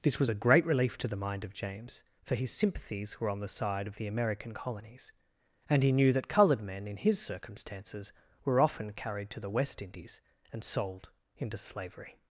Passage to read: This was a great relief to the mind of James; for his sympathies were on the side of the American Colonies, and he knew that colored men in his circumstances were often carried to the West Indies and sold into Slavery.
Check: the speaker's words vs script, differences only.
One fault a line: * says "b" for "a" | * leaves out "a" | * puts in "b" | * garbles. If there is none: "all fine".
all fine